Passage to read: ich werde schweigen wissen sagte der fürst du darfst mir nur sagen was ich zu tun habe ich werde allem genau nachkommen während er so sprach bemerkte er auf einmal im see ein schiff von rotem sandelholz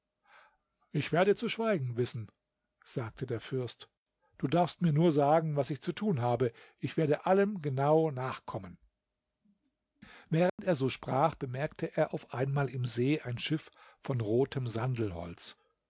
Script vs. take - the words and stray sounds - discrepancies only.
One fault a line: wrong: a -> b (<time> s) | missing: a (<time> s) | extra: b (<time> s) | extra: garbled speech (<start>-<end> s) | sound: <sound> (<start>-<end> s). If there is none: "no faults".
extra: zu (1.4 s)
sound: dropout (10.5-10.6 s)